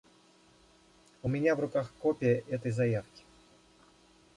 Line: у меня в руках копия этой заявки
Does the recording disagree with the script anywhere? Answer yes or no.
no